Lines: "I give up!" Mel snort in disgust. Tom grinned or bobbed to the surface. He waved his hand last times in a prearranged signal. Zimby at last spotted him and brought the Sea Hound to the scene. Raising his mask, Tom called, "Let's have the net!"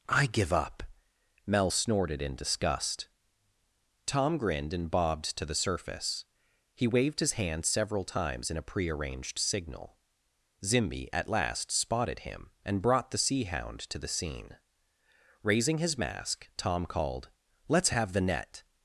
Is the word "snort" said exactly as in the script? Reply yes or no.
no